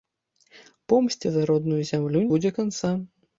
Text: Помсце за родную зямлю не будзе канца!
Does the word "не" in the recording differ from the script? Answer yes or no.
yes